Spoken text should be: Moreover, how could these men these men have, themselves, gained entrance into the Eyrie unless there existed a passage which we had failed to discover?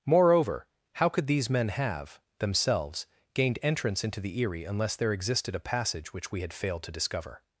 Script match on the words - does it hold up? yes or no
no